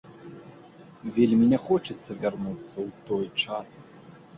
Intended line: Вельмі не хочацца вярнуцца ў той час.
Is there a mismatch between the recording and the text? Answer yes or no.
no